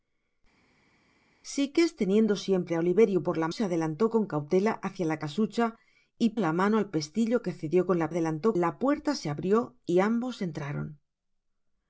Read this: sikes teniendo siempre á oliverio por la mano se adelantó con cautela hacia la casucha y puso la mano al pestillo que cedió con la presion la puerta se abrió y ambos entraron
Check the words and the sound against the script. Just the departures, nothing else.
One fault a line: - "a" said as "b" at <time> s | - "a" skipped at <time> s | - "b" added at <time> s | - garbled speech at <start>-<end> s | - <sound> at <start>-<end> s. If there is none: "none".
- "mano" skipped at 3.5 s
- "puso" skipped at 6.3 s
- "presion" said as "adelantó" at 8.1 s